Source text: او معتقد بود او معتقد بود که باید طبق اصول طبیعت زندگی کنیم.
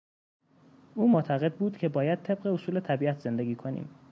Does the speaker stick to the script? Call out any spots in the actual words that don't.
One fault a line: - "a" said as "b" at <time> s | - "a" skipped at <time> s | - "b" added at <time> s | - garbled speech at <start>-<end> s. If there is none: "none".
- "او معتقد بود" skipped at 1.8 s